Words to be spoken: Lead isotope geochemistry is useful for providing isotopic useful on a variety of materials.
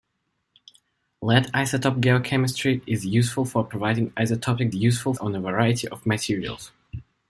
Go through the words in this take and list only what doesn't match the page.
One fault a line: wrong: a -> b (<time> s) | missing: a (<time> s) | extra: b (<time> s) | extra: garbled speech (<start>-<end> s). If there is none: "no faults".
no faults